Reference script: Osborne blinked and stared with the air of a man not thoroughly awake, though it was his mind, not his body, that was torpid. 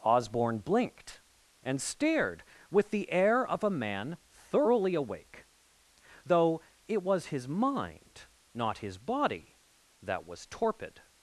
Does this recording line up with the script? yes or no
no